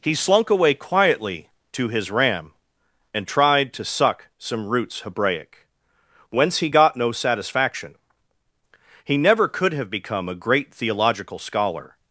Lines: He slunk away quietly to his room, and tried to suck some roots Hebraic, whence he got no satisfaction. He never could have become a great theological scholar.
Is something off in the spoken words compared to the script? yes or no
yes